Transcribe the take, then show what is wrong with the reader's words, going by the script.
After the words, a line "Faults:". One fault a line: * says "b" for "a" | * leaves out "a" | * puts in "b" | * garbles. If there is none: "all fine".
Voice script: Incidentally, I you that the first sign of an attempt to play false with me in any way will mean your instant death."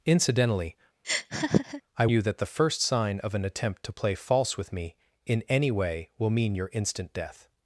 Incidentally, I you that the first sign of an attempt to play false with me in any way will mean your instant death."
Faults:
all fine